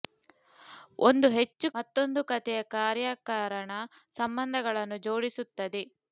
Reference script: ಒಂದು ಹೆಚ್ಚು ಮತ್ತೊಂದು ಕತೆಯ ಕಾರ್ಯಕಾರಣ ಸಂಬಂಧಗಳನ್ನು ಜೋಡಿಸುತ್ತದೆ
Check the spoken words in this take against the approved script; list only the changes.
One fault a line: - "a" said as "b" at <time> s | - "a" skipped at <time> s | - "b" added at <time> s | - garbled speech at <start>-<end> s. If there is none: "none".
none